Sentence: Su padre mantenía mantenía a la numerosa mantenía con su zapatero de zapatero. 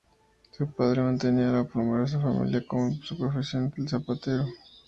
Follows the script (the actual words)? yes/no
no